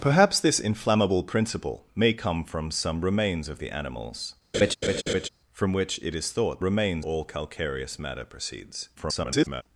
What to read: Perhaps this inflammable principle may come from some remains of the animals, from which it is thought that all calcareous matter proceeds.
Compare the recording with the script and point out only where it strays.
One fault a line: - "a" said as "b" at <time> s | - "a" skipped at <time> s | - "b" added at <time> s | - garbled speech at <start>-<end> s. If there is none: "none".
- "that" said as "remains" at 6.6 s
- garbled speech at 9.0-9.6 s